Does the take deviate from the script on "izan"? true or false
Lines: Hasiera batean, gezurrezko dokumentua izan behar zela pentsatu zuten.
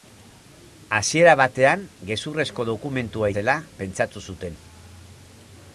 true